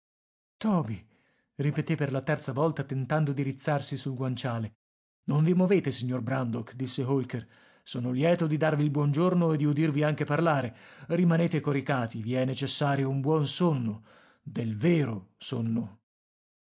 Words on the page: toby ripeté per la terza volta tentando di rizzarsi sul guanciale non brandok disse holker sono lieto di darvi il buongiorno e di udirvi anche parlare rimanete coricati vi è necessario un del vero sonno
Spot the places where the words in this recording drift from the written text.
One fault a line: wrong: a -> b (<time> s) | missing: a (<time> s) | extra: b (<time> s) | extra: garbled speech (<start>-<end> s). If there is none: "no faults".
extra: vi movete signor (5.4 s)
extra: buon sonno (13.2 s)